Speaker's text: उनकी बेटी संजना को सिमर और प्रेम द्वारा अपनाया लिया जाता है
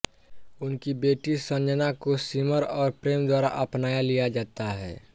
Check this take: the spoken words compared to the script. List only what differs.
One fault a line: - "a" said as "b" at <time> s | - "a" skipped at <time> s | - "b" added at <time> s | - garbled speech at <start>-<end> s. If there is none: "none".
none